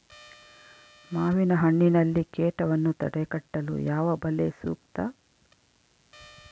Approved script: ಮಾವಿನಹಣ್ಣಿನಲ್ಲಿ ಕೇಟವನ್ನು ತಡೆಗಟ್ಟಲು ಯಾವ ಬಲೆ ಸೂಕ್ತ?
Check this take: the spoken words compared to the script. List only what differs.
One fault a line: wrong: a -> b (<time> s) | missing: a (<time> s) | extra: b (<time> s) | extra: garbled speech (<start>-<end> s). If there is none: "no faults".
no faults